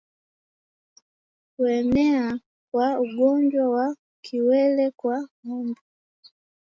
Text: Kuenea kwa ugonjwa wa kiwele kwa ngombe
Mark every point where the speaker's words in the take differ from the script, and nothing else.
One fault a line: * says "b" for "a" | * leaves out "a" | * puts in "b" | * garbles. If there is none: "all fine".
all fine